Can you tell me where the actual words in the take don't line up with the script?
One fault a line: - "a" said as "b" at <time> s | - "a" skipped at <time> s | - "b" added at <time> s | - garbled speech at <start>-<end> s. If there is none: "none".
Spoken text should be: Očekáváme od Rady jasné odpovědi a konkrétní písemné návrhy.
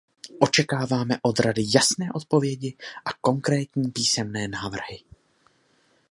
none